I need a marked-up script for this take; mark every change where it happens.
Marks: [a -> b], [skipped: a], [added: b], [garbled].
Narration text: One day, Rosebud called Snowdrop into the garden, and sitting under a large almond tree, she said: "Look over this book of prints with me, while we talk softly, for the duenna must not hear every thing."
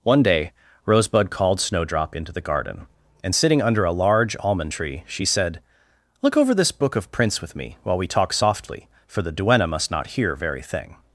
One day, Rosebud called Snowdrop into the garden, and sitting under a large almond tree, she said: "Look over this book of prints with me, while we talk softly, for the duenna must not hear [every -> very] thing."